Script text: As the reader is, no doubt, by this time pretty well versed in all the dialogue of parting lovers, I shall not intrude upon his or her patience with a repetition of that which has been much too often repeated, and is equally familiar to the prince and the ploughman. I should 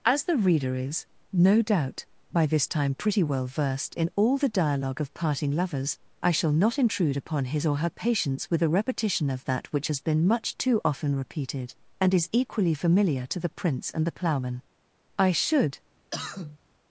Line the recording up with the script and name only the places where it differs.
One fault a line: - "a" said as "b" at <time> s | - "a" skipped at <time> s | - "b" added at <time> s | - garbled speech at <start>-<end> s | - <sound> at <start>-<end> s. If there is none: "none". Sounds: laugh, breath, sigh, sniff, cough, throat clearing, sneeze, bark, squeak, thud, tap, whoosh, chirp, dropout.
- cough at 16.1-16.6 s